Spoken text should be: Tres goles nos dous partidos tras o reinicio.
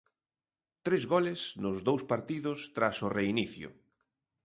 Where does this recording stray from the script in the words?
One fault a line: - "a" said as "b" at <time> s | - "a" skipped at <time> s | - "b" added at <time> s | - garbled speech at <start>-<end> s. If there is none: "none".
none